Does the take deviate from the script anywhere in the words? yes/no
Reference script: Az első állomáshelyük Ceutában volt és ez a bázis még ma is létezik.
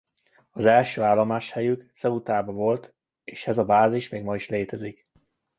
no